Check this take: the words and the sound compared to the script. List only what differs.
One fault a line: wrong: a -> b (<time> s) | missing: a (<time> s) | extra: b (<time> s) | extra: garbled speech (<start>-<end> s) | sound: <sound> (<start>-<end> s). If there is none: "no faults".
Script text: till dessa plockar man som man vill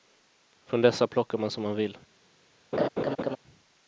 wrong: till -> från (0.7 s)
sound: laugh (2.7-3.4 s)